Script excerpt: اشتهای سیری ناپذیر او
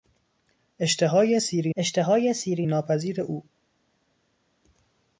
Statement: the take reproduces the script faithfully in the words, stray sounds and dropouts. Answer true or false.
false